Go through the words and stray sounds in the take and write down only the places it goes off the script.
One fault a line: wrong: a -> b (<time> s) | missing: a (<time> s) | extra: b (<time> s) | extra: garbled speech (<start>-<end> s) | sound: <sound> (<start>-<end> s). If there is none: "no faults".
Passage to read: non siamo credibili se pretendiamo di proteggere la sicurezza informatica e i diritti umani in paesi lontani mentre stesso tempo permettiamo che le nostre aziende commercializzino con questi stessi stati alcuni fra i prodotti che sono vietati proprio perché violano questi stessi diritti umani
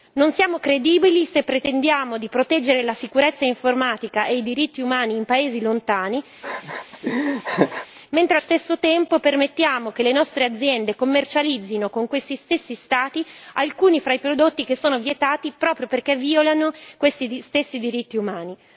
sound: laugh (6.4-7.9 s)